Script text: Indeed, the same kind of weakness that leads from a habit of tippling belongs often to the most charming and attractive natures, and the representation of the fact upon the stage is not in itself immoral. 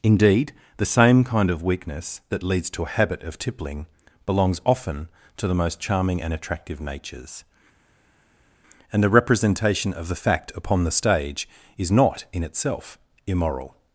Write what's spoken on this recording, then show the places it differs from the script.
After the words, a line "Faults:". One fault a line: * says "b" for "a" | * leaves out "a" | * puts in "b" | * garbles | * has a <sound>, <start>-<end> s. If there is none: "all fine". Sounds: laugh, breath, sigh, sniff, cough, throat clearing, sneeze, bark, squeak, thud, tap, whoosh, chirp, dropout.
Indeed, the same kind of weakness that leads to a habit of tippling belongs often to the most charming and attractive natures, and the representation of the fact upon the stage is not in itself immoral.
Faults:
* says "to" for "from"